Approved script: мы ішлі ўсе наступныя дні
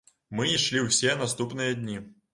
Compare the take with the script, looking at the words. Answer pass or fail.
pass